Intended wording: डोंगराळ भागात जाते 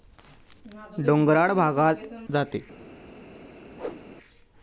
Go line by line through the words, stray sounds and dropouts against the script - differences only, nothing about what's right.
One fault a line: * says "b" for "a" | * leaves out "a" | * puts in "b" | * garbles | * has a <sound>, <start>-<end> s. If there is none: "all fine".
* has a whoosh, 3.8-4.0 s